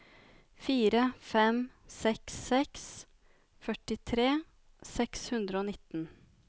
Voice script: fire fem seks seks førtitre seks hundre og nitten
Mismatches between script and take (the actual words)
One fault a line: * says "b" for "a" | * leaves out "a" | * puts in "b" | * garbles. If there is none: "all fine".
all fine